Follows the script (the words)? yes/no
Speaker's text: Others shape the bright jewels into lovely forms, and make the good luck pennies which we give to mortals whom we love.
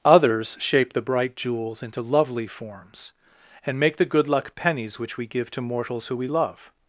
no